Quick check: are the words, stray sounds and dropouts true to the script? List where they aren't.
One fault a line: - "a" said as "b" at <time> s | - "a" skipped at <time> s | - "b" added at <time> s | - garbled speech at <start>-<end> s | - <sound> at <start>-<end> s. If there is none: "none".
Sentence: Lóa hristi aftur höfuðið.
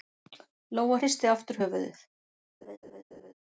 - laugh at 2.6-3.3 s